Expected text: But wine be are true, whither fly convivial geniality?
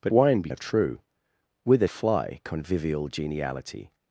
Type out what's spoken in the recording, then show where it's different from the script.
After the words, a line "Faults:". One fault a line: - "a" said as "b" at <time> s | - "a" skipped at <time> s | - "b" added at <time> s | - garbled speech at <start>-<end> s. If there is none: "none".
But wine be are true, whither fly convivial geniality?
Faults:
none